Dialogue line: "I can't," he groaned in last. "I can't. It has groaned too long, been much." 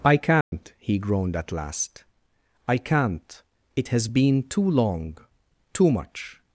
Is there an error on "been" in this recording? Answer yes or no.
yes